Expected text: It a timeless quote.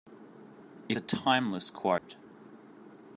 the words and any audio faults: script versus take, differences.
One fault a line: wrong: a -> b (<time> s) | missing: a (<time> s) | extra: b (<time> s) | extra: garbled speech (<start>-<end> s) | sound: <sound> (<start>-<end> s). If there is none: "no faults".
sound: dropout (2.0-2.1 s)